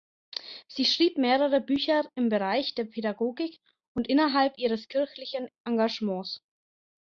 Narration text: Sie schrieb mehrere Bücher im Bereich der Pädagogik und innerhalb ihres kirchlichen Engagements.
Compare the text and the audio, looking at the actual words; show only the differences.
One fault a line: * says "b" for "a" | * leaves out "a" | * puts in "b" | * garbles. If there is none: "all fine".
all fine